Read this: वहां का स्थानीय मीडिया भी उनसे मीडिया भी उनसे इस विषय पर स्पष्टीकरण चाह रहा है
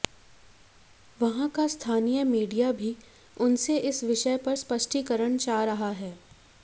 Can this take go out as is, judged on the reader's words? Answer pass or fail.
fail